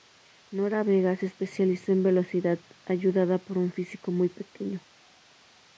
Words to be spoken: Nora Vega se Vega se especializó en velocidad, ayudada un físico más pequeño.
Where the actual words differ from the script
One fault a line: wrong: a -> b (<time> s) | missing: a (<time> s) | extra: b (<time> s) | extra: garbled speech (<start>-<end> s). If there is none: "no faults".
missing: Vega se (1.3 s)
extra: por (3.5 s)
wrong: más -> muy (4.1 s)